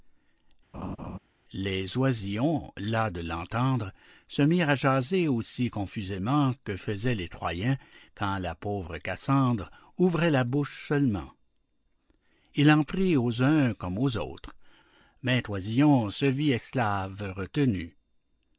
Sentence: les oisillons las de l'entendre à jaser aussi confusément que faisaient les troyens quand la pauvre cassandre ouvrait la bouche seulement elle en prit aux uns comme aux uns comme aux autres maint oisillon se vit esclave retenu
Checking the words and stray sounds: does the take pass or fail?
fail